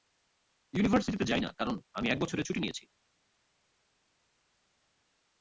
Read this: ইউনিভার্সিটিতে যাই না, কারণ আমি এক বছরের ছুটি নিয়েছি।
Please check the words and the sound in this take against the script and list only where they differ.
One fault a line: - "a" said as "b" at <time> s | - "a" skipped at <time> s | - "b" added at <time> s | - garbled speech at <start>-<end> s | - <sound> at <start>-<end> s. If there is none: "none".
none